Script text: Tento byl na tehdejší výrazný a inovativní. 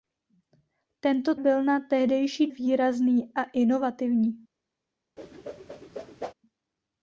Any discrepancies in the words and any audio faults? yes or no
yes